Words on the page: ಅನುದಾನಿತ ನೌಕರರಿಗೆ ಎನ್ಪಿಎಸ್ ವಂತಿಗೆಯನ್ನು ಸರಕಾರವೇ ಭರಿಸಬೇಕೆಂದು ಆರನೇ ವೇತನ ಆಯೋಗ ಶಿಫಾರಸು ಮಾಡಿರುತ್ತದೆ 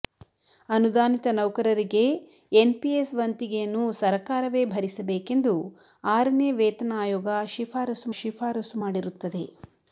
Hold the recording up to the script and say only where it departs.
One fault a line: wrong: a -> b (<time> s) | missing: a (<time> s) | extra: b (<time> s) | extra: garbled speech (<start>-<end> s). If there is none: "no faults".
extra: ಶಿಫಾರಸು (8.2 s)